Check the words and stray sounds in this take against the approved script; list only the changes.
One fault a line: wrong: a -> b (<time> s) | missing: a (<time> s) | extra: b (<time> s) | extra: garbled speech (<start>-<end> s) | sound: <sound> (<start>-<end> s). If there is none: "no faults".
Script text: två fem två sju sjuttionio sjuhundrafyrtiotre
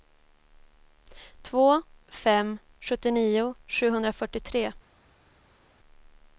missing: två sju (2.6 s)